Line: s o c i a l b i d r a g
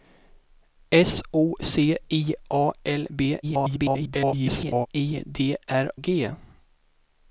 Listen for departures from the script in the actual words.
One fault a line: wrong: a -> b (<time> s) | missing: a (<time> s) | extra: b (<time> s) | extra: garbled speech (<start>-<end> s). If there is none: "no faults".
extra: garbled speech (3.4-4.9 s)
missing: a (5.9 s)